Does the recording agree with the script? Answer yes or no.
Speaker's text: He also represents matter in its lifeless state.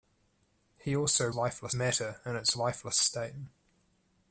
no